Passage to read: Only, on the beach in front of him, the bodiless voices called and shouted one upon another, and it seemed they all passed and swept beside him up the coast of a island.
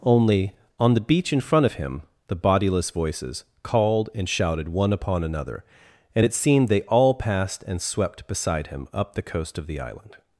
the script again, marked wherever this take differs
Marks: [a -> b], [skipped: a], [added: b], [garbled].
Only, on the beach in front of him, the bodiless voices called and shouted one upon another, and it seemed they all passed and swept beside him up the coast of [a -> the] island.